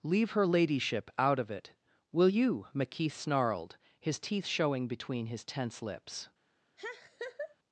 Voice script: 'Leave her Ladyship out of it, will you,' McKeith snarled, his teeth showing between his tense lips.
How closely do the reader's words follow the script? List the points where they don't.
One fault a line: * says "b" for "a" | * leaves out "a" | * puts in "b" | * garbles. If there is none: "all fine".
all fine